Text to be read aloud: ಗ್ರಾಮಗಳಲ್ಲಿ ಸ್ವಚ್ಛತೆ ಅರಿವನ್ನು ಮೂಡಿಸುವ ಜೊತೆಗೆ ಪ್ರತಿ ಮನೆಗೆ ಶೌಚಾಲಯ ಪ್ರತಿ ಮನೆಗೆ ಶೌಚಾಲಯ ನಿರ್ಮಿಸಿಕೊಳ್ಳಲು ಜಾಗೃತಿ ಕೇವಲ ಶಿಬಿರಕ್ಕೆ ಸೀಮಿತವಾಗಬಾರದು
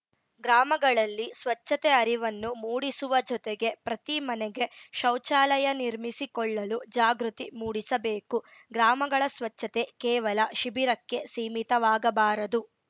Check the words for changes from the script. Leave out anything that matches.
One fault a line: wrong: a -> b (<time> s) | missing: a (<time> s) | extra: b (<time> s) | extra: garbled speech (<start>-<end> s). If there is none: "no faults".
wrong: ಪ್ರತಿ ಮನೆಗೆ ಶೌಚಾಲಯ ನಿರ್ಮಿಸಿಕೊಳ್ಳಲು ಜಾಗೃತಿ -> ನಿರ್ಮಿಸಿಕೊಳ್ಳಲು ಜಾಗೃತಿ ಮೂಡಿಸಬೇಕು ಗ್ರಾಮಗಳ ಸ್ವಚ್ಛತೆ (5.8 s)